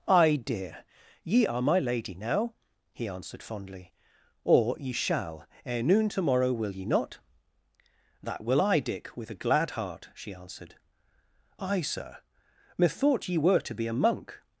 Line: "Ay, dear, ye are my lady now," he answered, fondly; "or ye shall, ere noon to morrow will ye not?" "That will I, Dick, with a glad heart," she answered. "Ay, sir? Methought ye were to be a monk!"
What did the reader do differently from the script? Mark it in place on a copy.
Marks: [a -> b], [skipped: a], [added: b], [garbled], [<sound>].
"Ay, dear, ye are my lady now," he answered, fondly; "or ye shall, ere noon to morrow will ye not?" "That will I, Dick, with a glad heart," she answered. "Ay, sir? Methought ye were to be a monk!"